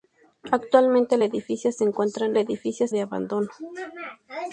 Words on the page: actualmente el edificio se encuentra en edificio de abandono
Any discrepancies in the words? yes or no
no